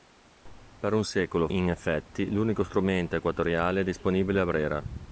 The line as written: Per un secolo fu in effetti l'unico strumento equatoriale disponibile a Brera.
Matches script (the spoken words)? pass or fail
fail